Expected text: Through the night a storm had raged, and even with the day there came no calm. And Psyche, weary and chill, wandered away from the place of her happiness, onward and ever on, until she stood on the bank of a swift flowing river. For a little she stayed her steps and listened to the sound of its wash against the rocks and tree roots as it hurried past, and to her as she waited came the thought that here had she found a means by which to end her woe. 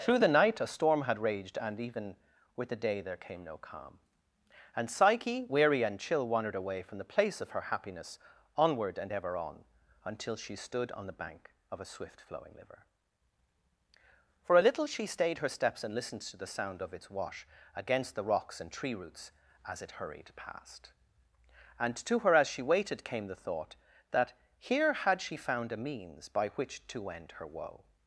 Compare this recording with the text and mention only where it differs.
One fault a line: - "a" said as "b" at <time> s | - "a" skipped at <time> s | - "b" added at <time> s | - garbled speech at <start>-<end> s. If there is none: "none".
- "river" said as "liver" at 12.5 s